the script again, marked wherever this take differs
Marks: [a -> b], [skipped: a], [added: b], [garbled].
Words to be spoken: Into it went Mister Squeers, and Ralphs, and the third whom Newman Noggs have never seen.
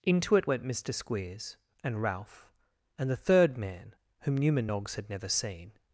Into it went Mister Squeers, and [Ralphs, -> Ralph] and the third [added: man] whom Newman Noggs [have -> had] never seen.